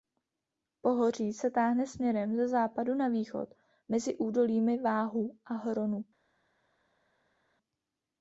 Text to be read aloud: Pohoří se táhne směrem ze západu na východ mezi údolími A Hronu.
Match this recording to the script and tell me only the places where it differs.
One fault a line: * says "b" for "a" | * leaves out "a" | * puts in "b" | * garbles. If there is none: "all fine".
* puts in "Váhu"